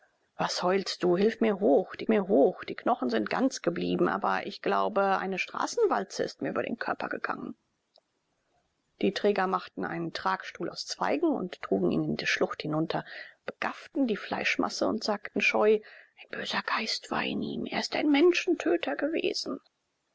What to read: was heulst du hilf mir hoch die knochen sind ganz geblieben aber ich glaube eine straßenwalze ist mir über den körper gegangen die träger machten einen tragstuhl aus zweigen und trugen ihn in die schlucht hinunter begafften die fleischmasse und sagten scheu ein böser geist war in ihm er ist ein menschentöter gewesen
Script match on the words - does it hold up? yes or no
no